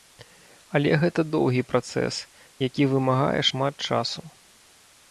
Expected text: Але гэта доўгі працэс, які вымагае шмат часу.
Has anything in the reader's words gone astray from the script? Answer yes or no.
no